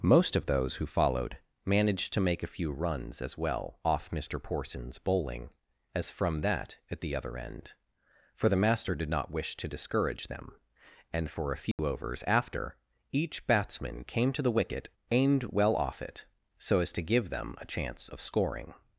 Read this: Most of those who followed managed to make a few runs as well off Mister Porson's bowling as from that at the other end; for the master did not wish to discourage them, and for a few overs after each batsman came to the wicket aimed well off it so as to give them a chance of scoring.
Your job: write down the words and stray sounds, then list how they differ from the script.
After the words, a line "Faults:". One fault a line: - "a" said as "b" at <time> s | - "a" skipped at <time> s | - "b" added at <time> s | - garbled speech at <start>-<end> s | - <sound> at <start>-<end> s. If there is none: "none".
Most of those who followed managed to make a few runs as well off Mister Porson's bowling as from that at the other end; for the master did not wish to discourage them, and for a few overs after each batsman came to the wicket aimed well off it so as to give them a chance of scoring.
Faults:
- dropout at 11.7-11.8 s